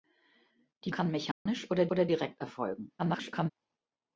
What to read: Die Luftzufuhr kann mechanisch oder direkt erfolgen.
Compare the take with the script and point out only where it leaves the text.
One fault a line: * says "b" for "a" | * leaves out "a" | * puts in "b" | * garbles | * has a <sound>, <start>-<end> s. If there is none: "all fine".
* leaves out "Luftzufuhr"
* has a dropout, 1.3-1.5 s
* puts in "oder"
* garbles